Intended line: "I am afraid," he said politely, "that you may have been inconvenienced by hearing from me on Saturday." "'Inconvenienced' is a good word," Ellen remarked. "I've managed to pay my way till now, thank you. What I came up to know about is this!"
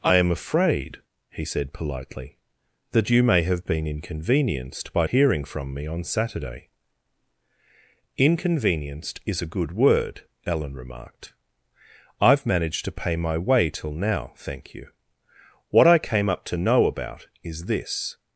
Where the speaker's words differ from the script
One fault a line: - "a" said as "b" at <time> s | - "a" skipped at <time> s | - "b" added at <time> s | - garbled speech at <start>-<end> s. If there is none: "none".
none